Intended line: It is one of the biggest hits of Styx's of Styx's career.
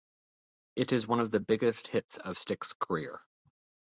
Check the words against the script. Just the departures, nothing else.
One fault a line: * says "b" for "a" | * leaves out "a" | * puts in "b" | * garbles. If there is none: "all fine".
* leaves out "of Styx's"